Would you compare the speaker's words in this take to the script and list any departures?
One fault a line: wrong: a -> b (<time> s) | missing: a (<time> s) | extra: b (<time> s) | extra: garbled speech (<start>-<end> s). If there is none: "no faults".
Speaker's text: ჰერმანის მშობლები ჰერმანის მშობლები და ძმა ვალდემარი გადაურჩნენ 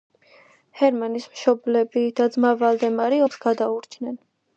missing: ჰერმანის მშობლები (2.0 s)
extra: ომს (3.2 s)